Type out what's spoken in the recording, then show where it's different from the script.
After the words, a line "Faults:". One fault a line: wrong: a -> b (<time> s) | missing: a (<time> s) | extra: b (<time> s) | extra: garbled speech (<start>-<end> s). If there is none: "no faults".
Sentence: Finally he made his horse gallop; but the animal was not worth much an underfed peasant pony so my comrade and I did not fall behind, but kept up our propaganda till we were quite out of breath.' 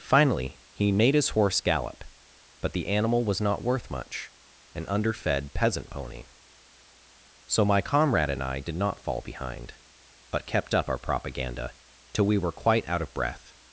Finally he made his horse gallop; but the animal was not worth much an underfed peasant pony so my comrade and I did not fall behind, but kept up our propaganda till we were quite out of breath.'
Faults:
no faults